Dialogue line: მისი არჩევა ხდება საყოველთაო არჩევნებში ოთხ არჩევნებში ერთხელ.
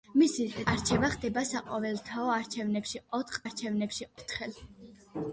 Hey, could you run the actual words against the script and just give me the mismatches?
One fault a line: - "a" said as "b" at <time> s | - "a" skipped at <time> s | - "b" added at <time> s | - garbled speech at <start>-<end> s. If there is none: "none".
none